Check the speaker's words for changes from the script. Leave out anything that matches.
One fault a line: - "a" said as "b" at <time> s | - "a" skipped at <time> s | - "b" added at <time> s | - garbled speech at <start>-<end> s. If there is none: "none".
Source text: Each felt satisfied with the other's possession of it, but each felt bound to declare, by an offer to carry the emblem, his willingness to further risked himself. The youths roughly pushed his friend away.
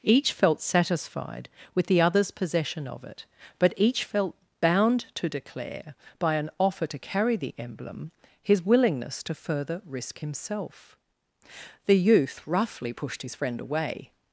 - "risked" said as "risk" at 9.8 s
- "youths" said as "youth" at 12.0 s